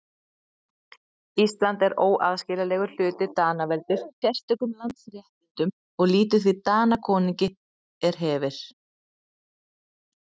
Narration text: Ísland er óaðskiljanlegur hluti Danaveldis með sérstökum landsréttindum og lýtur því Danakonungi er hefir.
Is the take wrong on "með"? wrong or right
wrong